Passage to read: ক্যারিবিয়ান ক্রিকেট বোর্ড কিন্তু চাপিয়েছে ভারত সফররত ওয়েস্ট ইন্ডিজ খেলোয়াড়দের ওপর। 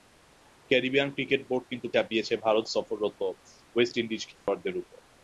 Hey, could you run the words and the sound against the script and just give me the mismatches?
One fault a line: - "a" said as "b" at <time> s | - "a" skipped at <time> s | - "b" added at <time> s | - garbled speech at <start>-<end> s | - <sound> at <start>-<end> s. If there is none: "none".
- dropout at 4.3-4.5 s